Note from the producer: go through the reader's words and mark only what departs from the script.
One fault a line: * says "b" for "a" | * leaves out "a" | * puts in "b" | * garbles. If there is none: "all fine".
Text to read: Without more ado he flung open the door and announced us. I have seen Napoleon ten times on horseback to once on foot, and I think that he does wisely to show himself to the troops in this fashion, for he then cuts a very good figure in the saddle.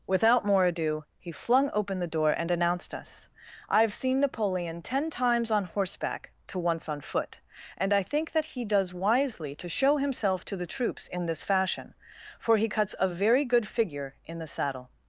* leaves out "then"